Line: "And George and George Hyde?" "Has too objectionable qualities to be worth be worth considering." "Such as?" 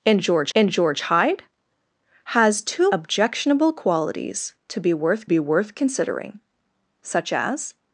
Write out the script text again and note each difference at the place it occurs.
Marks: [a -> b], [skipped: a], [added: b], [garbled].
"And George and George Hyde?" "Has too objectionable qualities to be worth be worth considering." "Such as?"